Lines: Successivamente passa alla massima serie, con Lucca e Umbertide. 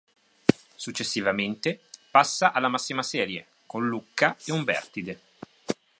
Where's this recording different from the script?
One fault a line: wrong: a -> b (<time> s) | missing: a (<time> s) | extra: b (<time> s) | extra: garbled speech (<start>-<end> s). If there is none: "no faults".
no faults